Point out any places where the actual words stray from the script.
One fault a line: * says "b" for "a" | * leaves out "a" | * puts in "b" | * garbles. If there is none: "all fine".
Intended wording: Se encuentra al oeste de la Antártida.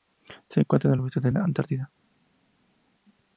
all fine